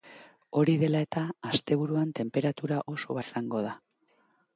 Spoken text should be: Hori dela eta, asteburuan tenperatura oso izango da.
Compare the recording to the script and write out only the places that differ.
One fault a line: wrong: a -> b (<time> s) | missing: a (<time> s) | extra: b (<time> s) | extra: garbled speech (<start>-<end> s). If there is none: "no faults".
no faults